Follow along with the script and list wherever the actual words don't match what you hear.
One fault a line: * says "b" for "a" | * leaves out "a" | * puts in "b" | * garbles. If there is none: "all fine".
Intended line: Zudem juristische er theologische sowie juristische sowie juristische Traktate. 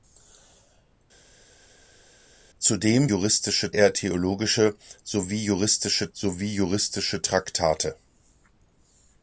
all fine